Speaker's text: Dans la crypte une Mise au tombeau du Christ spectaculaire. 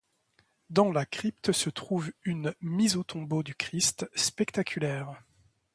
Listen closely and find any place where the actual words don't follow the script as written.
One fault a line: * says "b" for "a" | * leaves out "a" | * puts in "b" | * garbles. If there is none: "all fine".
* puts in "se trouve"